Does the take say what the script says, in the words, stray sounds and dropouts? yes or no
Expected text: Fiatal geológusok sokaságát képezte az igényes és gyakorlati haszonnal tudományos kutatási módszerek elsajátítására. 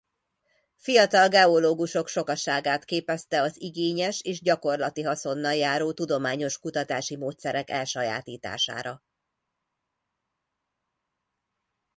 no